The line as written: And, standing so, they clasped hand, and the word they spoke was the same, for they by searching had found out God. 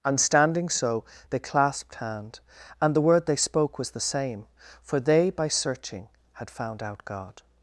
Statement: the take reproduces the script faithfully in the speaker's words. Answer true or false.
true